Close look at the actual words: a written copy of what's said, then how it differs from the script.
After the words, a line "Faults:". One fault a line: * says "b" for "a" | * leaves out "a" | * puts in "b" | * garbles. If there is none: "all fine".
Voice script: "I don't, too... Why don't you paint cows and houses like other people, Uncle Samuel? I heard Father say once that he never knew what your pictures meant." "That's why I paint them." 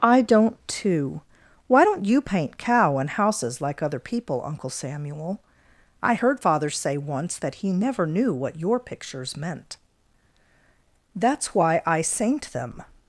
"I don't, too... Why don't you paint cow and houses like other people, Uncle Samuel? I heard Father say once that he never knew what your pictures meant." "That's why I saint them."
Faults:
* says "cow" for "cows"
* says "saint" for "paint"